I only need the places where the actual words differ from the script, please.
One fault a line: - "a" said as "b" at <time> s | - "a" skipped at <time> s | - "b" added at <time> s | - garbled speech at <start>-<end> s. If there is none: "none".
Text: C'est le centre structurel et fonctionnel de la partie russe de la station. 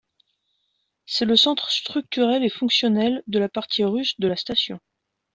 none